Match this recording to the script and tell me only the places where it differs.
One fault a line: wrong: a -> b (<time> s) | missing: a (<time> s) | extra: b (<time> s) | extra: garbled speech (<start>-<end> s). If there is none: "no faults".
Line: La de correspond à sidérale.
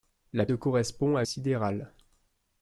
no faults